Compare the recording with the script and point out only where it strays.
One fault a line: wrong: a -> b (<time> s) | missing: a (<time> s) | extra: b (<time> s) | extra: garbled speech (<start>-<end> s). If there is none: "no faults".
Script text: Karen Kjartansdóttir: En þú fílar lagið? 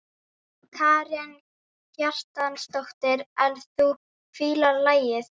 no faults